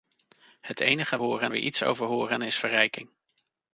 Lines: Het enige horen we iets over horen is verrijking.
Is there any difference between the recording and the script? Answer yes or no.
no